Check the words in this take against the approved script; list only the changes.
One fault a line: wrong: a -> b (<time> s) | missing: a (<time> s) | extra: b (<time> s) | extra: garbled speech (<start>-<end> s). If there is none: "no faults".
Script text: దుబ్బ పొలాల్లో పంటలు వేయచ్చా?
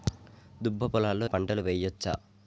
no faults